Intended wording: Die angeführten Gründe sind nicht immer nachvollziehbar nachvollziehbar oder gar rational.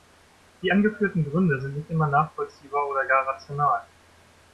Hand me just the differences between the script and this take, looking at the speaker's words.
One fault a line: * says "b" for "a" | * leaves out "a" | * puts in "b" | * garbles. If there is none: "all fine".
* leaves out "nachvollziehbar"